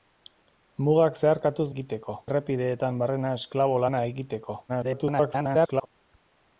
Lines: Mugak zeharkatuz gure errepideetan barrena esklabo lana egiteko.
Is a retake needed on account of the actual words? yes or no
yes